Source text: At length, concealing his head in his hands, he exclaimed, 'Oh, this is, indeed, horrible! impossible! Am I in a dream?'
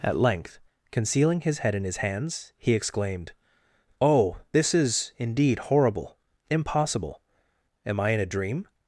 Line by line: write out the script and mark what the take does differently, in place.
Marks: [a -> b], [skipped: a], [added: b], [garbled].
At length, concealing his head in his hands, he exclaimed, 'Oh, this is, indeed, horrible! impossible! Am I in a dream?'